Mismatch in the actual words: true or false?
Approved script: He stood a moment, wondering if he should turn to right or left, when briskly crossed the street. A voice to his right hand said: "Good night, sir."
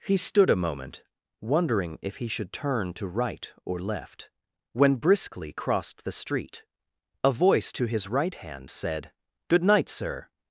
false